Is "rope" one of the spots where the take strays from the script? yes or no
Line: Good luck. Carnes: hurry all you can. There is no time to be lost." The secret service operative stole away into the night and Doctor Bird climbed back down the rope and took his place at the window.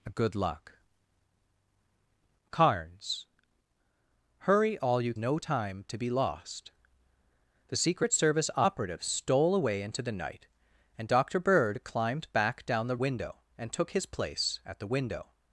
yes